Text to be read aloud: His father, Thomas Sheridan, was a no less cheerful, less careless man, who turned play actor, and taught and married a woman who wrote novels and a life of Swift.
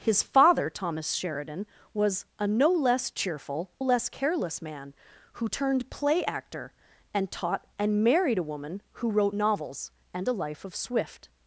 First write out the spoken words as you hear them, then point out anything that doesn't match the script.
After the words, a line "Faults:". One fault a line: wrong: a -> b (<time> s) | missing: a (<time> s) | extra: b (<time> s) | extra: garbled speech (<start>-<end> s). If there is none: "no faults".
His father, Thomas Sheridan, was a no less cheerful, less careless man, who turned play actor, and taught and married a woman who wrote novels and a life of Swift.
Faults:
no faults